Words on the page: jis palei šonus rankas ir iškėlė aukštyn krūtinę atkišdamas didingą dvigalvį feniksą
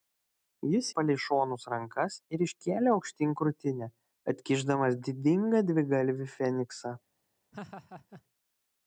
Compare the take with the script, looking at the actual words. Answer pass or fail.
pass